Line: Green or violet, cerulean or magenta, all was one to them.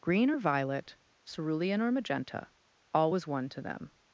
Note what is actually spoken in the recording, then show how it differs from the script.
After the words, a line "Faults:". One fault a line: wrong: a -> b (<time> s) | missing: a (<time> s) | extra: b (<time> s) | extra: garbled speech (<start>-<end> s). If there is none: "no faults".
Green or violet, cerulean or magenta, all was one to them.
Faults:
no faults